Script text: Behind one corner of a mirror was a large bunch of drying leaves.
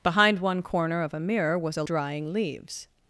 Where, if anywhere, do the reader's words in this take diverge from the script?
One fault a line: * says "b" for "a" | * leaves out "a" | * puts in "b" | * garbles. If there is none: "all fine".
* leaves out "large bunch of"